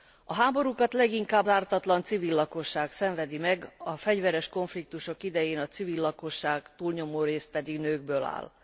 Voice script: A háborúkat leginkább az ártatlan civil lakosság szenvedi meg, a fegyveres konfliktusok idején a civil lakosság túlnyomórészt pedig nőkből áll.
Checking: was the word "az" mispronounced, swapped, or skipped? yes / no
yes